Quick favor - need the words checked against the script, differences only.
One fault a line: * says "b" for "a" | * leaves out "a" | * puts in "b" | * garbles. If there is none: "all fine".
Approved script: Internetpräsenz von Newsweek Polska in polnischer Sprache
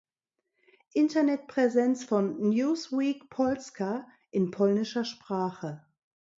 all fine